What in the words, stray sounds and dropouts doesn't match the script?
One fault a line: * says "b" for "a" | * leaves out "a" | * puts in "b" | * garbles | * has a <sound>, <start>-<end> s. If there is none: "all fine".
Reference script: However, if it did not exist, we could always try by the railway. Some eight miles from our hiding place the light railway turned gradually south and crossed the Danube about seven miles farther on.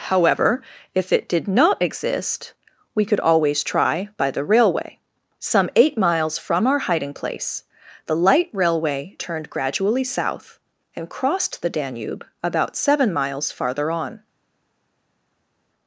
all fine